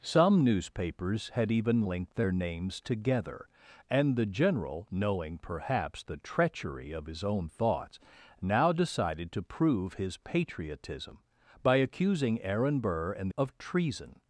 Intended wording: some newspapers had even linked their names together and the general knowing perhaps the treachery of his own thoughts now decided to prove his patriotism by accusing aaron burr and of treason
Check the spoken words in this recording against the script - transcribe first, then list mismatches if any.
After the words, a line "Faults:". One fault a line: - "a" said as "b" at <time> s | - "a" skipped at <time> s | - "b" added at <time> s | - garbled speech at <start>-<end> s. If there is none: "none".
some newspapers had even linked their names together and the general knowing perhaps the treachery of his own thoughts now decided to prove his patriotism by accusing aaron burr and of treason
Faults:
none